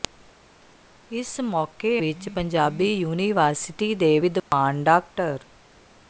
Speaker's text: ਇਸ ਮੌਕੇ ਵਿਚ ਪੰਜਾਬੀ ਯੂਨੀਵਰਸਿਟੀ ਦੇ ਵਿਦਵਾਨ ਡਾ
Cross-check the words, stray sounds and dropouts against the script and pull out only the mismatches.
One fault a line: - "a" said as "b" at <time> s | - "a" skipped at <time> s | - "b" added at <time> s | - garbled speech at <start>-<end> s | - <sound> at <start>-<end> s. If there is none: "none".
- dropout at 4.4-4.5 s